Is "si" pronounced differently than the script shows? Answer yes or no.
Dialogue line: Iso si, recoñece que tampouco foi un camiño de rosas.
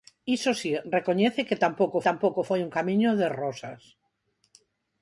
no